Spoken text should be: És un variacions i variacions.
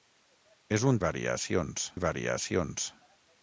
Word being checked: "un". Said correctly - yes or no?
yes